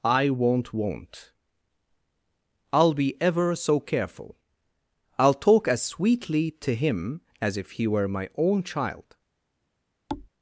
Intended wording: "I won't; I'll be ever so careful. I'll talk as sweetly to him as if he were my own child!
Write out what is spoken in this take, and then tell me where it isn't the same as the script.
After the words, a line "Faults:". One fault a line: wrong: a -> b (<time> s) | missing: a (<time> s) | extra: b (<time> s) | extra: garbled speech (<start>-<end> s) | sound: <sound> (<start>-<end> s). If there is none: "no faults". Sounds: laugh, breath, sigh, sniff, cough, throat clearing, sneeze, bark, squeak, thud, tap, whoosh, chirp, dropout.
"I won't won't; I'll be ever so careful. I'll talk as sweetly to him as if he were my own child!
Faults:
extra: won't (0.7 s)
sound: thud (10.1-10.3 s)